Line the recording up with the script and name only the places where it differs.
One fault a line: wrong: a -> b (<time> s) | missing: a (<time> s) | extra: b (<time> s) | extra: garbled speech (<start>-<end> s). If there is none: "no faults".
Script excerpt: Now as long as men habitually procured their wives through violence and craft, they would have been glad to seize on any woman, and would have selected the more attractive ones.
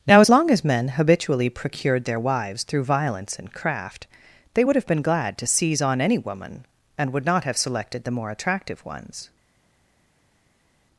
extra: not (7.2 s)